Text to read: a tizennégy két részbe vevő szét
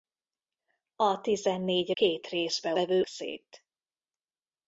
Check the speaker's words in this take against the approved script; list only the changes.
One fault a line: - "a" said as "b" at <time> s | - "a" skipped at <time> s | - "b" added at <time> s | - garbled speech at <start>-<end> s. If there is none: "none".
none